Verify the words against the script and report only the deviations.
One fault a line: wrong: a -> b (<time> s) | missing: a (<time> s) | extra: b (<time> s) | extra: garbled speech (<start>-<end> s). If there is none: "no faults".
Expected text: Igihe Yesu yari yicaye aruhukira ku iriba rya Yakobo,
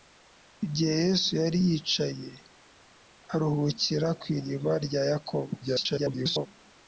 extra: garbled speech (5.6-6.5 s)